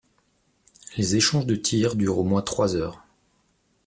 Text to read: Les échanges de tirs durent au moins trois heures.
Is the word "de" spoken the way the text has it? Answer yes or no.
yes